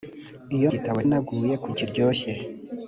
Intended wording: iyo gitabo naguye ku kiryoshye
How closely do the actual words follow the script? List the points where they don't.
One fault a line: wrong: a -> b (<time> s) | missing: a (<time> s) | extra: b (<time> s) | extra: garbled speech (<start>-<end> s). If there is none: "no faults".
no faults